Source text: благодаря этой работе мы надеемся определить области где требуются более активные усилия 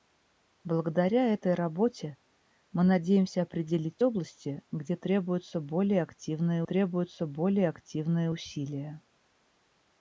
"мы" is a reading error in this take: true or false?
false